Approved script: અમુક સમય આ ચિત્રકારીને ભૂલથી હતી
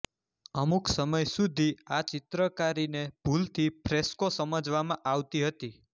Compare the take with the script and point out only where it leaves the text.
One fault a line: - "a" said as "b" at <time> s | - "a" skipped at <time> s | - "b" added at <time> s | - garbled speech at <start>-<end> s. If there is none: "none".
- "સુધી" added at 1.3 s
- "ફ્રેસ્કો સમજવામાં આવતી" added at 3.8 s